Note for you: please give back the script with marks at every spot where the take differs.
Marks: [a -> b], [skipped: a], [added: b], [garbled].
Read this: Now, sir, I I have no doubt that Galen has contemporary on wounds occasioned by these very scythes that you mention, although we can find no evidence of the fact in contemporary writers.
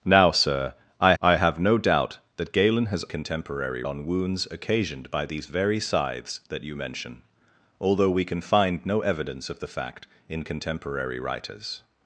Now, sir, I I have no doubt that Galen has contemporary on wounds occasioned by these very scythes that you mention, although we can find no evidence of the fact in contemporary writers.